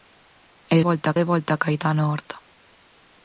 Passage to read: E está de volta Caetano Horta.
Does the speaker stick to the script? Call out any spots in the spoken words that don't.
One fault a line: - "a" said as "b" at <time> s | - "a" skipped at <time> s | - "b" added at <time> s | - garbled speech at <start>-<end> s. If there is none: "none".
- "está" said as "volta" at 0.9 s